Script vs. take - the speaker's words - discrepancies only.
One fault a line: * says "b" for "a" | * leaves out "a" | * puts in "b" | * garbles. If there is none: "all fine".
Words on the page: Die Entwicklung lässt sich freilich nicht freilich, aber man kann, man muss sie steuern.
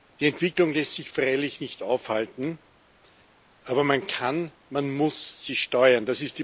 * says "aufhalten" for "freilich"